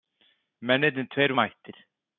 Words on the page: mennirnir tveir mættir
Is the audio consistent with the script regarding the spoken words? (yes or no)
yes